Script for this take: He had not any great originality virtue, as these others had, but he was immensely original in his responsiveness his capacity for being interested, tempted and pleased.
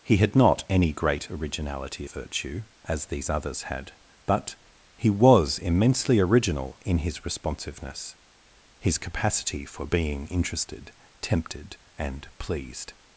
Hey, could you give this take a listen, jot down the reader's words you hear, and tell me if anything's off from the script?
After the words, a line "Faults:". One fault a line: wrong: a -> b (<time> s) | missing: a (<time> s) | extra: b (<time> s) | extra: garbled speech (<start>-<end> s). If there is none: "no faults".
He had not any great originality virtue, as these others had, but he was immensely original in his responsiveness his capacity for being interested, tempted and pleased.
Faults:
no faults